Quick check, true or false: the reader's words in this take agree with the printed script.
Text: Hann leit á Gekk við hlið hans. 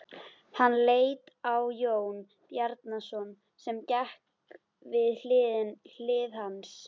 false